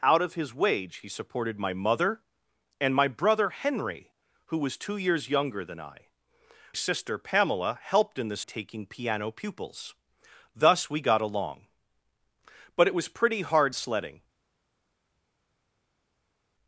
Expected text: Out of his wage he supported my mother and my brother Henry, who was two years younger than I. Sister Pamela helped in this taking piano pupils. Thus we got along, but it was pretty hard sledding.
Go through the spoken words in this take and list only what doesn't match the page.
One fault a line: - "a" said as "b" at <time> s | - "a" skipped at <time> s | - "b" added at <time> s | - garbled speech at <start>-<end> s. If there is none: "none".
none